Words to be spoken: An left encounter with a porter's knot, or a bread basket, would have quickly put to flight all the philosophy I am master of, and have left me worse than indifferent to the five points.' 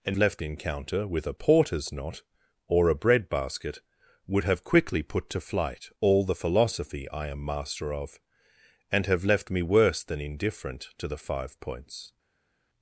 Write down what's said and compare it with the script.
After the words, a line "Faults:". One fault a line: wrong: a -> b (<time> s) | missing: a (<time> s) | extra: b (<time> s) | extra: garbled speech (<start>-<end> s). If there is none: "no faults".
An left encounter with a porter's knot, or a bread basket, would have quickly put to flight all the philosophy I am master of, and have left me worse than indifferent to the five points.'
Faults:
no faults